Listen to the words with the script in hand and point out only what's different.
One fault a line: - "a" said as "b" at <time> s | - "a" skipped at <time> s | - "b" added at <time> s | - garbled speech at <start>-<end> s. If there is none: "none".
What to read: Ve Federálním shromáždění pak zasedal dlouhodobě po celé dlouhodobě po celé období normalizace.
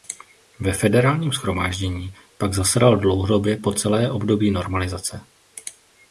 - "dlouhodobě po celé" skipped at 4.1 s